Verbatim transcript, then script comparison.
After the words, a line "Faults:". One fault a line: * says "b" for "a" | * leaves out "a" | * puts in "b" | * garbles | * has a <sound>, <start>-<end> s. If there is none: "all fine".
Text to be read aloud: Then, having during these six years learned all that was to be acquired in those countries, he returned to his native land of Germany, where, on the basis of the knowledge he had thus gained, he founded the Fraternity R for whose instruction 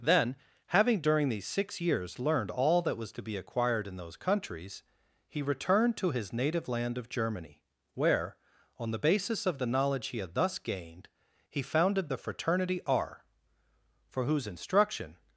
Then, having during these six years learned all that was to be acquired in those countries, he returned to his native land of Germany, where, on the basis of the knowledge he had thus gained, he founded the Fraternity R for whose instruction
Faults:
all fine